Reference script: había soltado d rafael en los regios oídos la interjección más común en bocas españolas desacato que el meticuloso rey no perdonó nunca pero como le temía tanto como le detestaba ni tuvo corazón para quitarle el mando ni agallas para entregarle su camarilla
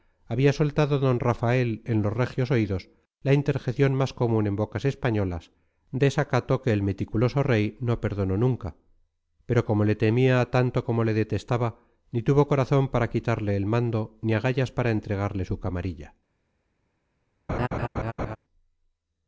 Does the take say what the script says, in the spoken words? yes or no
yes